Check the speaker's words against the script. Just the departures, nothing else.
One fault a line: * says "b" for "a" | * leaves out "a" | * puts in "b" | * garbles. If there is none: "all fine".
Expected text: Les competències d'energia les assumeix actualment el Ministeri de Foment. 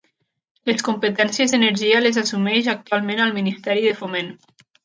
all fine